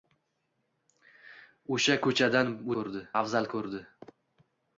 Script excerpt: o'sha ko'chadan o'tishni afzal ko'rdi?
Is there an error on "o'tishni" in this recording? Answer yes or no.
yes